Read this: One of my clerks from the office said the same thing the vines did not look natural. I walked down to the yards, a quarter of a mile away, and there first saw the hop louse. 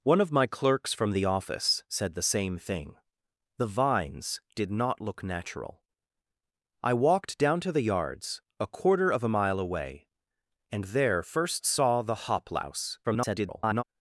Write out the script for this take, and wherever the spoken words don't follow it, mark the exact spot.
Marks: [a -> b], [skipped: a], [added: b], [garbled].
One of my clerks from the office said the same thing the vines did not look natural. I walked down to the yards, a quarter of a mile away, and there first saw the hop louse. [garbled]